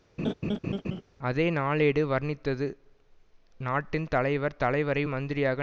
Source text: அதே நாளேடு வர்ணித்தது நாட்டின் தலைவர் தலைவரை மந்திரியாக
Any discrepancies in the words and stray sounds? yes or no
yes